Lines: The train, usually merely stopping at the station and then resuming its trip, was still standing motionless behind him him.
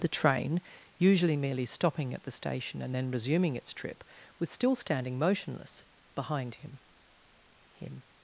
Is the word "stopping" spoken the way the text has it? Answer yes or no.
yes